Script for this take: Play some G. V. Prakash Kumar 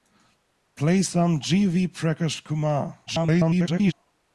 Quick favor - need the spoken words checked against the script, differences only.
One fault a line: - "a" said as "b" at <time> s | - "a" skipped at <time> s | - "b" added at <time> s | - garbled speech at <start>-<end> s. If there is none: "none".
- garbled speech at 3.1-3.9 s